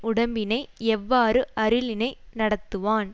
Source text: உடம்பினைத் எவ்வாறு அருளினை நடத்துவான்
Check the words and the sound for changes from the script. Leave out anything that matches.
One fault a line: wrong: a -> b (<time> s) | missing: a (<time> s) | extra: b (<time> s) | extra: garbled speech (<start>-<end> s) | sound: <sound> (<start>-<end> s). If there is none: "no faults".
no faults